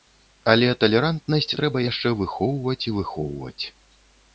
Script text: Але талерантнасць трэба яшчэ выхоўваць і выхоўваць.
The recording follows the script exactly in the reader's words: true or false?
true